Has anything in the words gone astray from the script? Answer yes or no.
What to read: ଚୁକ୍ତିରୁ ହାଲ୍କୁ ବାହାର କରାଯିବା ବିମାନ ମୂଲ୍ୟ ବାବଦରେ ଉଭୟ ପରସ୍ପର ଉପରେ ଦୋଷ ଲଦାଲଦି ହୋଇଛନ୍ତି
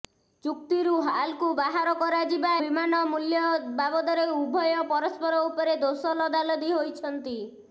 no